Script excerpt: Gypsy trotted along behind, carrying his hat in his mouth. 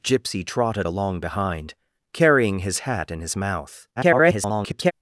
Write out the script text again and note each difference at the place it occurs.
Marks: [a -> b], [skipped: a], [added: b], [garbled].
Gypsy trotted along behind, carrying his hat in his mouth. [garbled]